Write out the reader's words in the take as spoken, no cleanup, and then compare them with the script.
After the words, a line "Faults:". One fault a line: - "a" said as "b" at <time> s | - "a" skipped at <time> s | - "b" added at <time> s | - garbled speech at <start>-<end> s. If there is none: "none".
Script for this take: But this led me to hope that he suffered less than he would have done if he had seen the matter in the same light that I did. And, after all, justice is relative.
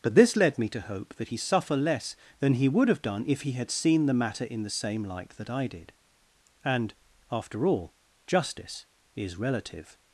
But this led me to hope that he suffer less than he would have done if he had seen the matter in the same light that I did. And, after all, justice is relative.
Faults:
- "suffered" said as "suffer" at 1.4 s